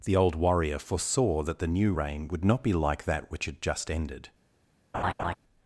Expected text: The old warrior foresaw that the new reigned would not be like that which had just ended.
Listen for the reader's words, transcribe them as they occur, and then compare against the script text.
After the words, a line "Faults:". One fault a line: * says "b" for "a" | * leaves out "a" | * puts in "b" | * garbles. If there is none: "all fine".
The old warrior foresaw that the new reign would not be like that which had just ended.
Faults:
* says "reign" for "reigned"